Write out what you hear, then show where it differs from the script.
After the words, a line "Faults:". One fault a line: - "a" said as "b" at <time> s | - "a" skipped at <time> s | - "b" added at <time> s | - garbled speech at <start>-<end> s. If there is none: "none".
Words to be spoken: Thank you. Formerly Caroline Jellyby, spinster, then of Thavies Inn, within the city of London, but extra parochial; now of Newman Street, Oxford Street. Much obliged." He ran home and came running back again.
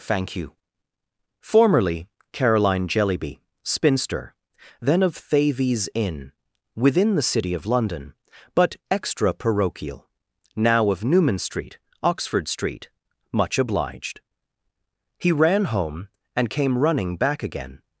Thank you. Formerly Caroline Jellyby, spinster, then of Thavies Inn, within the city of London, but extra parochial; now of Newman Street, Oxford Street. Much obliged." He ran home and came running back again.
Faults:
none